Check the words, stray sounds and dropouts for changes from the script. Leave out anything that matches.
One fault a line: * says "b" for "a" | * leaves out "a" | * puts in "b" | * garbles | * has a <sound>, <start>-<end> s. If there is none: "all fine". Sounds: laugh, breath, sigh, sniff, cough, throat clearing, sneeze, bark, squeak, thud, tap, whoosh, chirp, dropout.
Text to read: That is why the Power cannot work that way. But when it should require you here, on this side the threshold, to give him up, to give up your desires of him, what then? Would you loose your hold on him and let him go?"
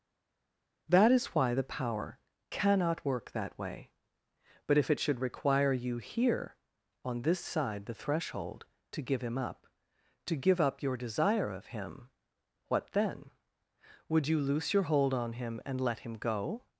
* says "if" for "when"
* says "desire" for "desires"